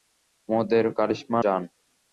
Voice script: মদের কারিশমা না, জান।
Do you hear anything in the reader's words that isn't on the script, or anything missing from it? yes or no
yes